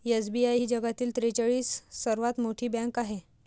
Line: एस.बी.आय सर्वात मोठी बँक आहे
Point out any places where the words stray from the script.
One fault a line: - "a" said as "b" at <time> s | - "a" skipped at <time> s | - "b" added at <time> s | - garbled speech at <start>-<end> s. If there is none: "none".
- "ही जगातील त्रेचाळीस" added at 0.5 s